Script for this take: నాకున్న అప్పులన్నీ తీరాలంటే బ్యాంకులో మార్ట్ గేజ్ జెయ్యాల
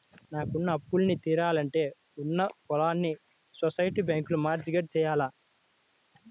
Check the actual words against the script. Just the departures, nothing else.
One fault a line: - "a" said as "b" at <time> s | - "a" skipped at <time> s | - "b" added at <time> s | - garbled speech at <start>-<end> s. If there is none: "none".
- "ఉన్న పొలాల్ని సొసైటీ" added at 2.2 s